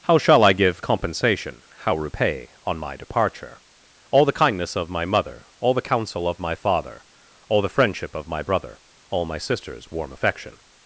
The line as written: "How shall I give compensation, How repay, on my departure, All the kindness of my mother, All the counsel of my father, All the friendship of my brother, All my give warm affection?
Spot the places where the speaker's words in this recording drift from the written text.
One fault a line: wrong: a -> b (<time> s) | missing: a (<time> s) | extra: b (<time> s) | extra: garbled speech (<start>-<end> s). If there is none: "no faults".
wrong: give -> sister's (9.4 s)